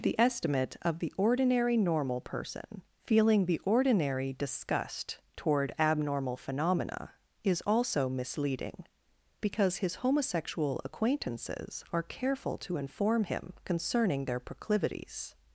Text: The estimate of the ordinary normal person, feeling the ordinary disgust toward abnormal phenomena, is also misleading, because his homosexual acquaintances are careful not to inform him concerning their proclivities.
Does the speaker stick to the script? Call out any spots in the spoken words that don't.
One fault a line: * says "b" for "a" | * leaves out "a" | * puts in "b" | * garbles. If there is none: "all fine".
* leaves out "not"